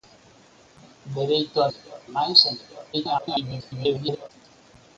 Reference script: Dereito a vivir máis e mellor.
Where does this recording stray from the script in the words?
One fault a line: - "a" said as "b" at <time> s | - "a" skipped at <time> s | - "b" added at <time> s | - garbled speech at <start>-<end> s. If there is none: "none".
- "vivir" said as "mellor" at 1.7 s
- garbled speech at 2.9-4.3 s